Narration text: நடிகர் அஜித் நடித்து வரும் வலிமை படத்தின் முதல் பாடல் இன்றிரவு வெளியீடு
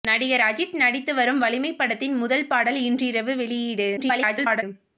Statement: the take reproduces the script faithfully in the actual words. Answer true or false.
false